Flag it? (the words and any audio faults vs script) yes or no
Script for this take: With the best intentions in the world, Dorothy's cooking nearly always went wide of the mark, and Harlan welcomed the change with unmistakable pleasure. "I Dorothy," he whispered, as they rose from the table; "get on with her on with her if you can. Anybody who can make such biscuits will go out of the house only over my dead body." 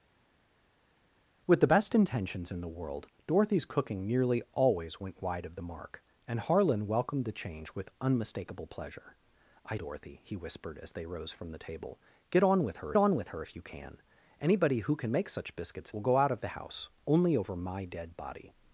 no